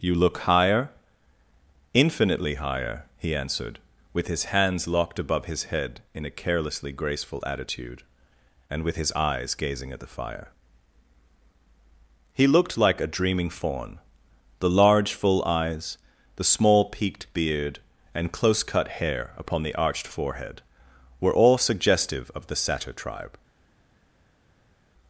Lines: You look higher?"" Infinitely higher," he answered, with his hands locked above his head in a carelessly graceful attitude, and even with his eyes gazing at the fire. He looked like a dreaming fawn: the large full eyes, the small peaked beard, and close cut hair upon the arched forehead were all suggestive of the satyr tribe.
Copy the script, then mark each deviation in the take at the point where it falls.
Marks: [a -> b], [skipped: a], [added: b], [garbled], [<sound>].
You look higher?"" Infinitely higher," he answered, with his hands locked above his head in a carelessly graceful attitude, and [skipped: even] with his eyes gazing at the fire. He looked like a dreaming fawn: the large full eyes, the small peaked beard, and close cut hair upon the arched forehead were all suggestive of the satyr tribe.